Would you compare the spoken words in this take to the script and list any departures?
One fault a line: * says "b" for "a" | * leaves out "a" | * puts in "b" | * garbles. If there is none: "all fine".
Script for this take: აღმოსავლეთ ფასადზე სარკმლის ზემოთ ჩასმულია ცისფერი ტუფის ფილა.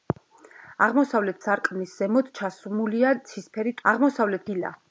* leaves out "ფასადზე"
* says "აღმოსავლეთ" for "ტუფის"